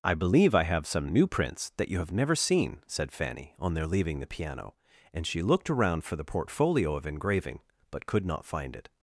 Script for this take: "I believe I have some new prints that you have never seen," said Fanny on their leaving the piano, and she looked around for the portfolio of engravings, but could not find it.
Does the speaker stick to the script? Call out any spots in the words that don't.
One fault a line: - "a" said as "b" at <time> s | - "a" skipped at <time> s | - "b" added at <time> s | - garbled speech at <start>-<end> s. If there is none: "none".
- "engravings" said as "engraving" at 7.0 s